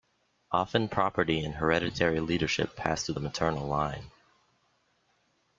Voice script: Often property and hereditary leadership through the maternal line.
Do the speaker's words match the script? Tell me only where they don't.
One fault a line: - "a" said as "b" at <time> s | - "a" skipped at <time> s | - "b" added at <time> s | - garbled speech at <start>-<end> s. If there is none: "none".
- "passed" added at 2.8 s